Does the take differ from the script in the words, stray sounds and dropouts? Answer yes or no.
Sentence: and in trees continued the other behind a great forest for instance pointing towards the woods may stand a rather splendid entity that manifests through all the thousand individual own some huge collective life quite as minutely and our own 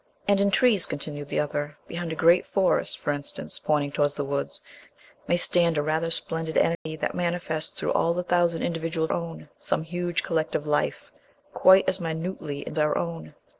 yes